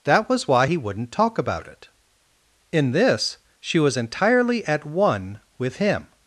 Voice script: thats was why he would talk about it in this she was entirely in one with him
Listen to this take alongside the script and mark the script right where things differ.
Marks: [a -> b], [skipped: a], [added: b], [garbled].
[thats -> that] was why he [would -> wouldn't] talk about it in this she was entirely [in -> at] one with him